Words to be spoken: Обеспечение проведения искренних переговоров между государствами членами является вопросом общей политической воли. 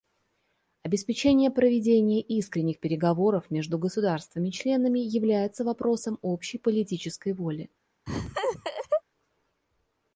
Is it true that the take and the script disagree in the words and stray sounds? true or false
true